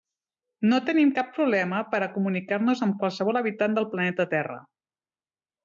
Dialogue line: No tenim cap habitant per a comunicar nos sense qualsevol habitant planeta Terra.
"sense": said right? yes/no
no